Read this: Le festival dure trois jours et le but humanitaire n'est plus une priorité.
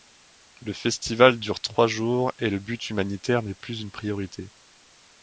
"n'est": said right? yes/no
yes